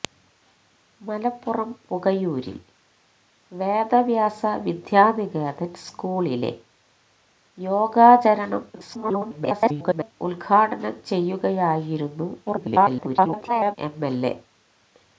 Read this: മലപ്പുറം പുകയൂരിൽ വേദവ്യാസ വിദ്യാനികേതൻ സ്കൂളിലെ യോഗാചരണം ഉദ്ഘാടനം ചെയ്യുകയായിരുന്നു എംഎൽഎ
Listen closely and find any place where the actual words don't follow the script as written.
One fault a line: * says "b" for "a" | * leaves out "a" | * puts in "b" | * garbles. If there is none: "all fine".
* garbles
* garbles